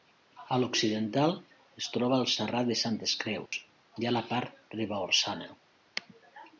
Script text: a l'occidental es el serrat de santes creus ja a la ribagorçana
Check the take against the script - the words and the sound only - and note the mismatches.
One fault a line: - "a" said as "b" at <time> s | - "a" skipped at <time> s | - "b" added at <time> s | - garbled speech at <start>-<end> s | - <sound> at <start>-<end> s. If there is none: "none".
- "troba" added at 2.0 s
- dropout at 3.5-3.5 s
- "part" added at 4.3 s